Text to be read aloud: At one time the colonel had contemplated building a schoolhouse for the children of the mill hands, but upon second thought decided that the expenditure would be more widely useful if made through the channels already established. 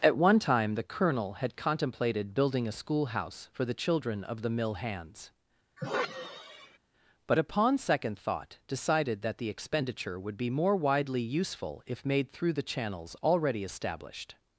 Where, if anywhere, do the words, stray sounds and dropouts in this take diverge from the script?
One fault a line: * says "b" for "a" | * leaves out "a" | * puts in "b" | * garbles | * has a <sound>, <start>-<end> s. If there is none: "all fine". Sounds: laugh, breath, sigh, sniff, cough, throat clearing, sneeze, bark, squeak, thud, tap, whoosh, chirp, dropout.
* has a sigh, 5.8-6.8 s